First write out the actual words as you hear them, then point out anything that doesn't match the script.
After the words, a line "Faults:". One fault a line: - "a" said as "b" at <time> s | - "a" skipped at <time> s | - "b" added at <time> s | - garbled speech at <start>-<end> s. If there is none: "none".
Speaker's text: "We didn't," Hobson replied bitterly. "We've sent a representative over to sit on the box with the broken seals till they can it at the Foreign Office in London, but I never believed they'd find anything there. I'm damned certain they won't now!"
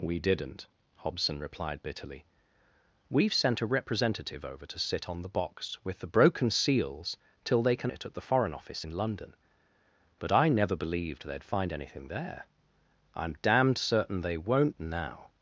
"We didn't," Hobson replied bitterly. "We've sent a representative over to sit on the box with the broken seals till they can it at the Foreign Office in London, but I never believed they'd find anything there. I'm damned certain they won't now!"
Faults:
none